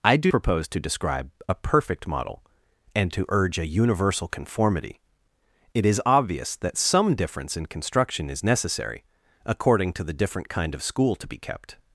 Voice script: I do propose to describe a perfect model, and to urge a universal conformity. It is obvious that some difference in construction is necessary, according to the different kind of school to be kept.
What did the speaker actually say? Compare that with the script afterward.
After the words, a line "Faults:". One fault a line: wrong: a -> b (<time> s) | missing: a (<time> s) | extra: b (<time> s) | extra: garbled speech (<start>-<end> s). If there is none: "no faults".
I do propose to describe a perfect model, and to urge a universal conformity. It is obvious that some difference in construction is necessary, according to the different kind of school to be kept.
Faults:
no faults